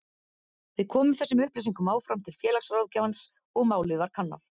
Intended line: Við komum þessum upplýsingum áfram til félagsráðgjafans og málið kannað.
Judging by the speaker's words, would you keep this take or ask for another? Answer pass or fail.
fail